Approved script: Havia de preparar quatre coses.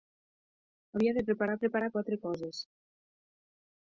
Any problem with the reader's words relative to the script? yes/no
yes